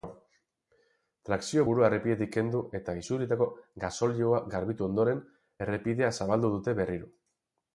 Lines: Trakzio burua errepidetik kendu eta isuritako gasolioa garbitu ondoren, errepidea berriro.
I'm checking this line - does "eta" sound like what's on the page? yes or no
yes